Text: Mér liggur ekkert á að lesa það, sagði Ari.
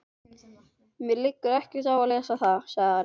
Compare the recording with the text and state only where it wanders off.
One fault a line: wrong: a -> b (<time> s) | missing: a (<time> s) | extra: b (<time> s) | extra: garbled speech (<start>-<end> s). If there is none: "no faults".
no faults